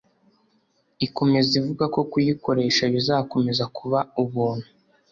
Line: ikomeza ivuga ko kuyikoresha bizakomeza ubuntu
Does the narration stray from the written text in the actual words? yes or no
yes